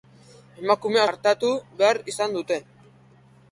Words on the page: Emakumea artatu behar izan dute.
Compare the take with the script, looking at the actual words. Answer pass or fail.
pass